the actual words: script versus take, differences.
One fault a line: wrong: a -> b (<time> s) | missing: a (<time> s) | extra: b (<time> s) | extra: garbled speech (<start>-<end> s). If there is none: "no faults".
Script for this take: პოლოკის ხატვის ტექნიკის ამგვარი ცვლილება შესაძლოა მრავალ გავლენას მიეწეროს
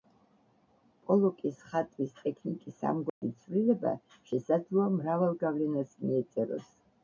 no faults